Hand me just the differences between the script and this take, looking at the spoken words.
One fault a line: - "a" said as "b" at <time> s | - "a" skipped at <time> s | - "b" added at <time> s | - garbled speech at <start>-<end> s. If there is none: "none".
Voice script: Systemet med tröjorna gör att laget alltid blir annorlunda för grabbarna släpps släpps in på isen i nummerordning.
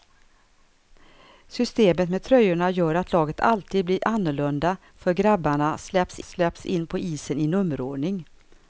none